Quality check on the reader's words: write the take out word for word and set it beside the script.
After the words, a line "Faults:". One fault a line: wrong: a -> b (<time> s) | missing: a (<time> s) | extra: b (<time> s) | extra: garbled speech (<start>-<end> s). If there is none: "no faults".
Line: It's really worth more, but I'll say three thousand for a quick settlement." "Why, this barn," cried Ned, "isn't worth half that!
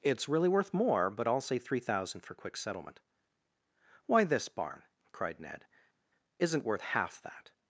It's really worth more, but I'll say three thousand for quick settlement." "Why, this barn," cried Ned, "isn't worth half that!
Faults:
missing: a (2.3 s)